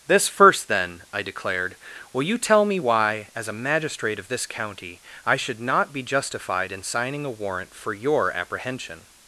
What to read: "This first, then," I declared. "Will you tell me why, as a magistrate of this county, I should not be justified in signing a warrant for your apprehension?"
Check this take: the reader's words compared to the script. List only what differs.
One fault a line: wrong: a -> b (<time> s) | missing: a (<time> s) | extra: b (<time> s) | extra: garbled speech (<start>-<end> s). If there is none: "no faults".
no faults